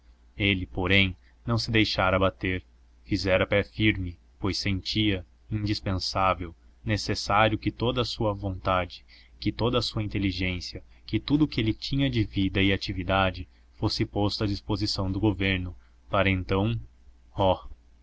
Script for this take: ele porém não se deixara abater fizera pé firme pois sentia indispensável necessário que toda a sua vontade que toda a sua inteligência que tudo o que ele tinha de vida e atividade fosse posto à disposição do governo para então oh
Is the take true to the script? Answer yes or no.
yes